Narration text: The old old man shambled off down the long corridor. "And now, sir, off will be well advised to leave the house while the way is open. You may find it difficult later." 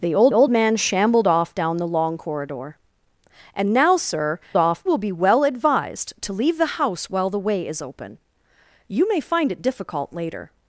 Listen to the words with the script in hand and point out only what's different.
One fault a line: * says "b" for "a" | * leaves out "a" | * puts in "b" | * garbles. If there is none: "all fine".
all fine